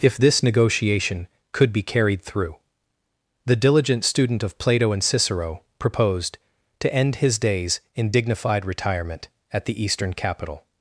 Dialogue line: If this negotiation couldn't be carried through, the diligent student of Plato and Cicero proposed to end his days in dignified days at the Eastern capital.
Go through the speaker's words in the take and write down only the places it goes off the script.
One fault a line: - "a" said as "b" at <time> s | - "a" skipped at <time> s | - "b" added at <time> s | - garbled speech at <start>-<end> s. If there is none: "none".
- "couldn't" said as "could" at 1.5 s
- "days" said as "retirement" at 8.7 s